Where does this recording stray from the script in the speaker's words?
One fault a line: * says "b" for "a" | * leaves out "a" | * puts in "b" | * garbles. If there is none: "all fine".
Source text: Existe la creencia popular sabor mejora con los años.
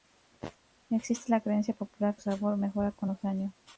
all fine